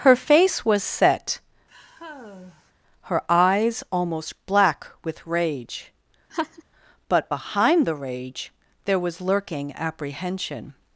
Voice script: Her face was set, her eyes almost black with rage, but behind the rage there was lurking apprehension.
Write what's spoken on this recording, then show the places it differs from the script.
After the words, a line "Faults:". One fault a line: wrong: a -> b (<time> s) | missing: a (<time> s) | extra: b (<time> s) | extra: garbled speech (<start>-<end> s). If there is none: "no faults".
Her face was set, her eyes almost black with rage, but behind the rage there was lurking apprehension.
Faults:
no faults